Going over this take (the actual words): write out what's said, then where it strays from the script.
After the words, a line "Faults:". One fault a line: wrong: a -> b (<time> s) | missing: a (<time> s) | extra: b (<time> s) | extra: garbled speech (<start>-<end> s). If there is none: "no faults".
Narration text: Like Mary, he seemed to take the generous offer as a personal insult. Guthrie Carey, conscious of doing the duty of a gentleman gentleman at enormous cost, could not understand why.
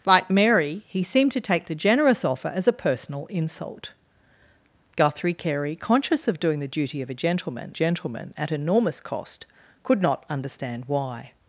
Like Mary, he seemed to take the generous offer as a personal insult. Guthrie Carey, conscious of doing the duty of a gentleman gentleman at enormous cost, could not understand why.
Faults:
no faults